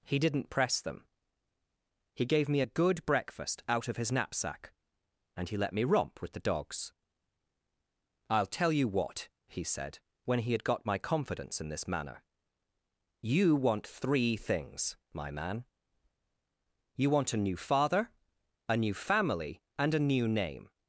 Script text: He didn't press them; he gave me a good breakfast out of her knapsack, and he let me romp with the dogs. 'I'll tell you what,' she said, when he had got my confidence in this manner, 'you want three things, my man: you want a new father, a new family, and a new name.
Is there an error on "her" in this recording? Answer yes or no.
yes